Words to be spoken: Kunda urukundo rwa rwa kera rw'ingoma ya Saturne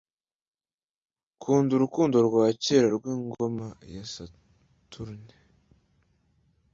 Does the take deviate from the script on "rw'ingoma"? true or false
false